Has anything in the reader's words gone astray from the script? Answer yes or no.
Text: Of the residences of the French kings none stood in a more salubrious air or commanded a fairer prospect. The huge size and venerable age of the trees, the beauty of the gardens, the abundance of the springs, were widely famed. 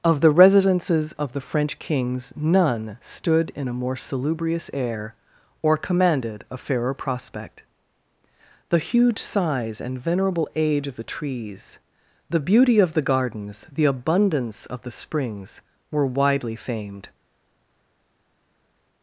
no